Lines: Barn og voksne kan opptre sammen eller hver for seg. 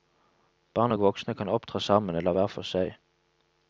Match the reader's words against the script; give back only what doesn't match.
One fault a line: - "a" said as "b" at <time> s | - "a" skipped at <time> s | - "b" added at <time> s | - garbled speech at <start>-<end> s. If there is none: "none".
none